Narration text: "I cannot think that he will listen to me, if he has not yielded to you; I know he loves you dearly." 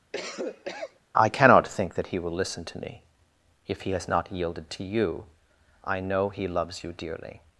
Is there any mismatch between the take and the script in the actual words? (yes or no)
no